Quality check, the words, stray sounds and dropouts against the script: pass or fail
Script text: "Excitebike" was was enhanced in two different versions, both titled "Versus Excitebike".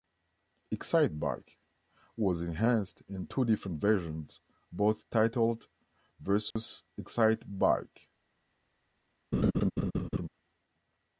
fail